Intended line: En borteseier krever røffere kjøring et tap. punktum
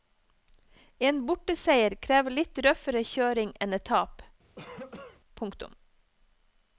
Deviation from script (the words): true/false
true